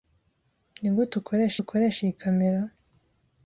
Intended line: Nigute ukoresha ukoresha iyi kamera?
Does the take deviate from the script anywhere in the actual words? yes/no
no